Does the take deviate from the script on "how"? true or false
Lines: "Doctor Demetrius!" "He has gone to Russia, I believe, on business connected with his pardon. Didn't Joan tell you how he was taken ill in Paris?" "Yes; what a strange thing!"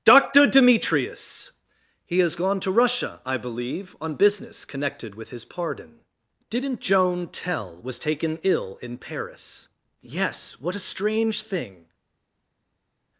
true